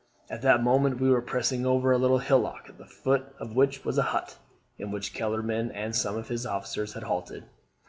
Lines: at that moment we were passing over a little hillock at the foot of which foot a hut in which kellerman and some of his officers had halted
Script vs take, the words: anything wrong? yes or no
yes